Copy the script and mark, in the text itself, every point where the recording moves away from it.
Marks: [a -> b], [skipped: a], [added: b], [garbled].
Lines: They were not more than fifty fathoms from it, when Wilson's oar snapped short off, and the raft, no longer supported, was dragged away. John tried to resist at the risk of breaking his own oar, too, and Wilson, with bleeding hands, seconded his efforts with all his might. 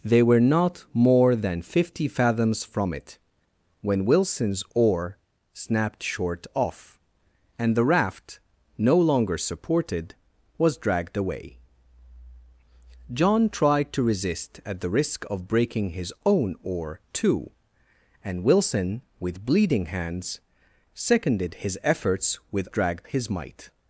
They were not more than fifty fathoms from it, when Wilson's oar snapped short off, and the raft, no longer supported, was dragged away. John tried to resist at the risk of breaking his own oar, too, and Wilson, with bleeding hands, seconded his efforts with [all -> dragged] his might.